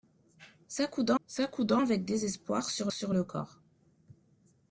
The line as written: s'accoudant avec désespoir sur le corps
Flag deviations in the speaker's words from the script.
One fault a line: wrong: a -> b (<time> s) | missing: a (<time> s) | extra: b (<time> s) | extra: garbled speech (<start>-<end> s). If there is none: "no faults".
extra: s'accoudant (1.3 s)
extra: sur (2.9 s)